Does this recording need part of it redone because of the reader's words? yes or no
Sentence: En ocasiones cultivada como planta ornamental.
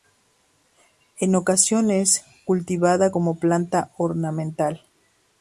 no